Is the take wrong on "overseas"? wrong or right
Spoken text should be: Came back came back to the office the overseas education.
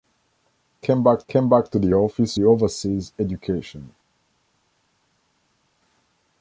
right